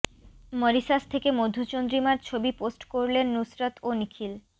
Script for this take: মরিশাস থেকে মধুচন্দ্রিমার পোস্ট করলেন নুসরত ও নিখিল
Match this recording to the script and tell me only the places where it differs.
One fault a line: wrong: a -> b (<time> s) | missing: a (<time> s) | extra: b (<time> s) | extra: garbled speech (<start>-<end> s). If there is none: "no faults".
extra: ছবি (2.2 s)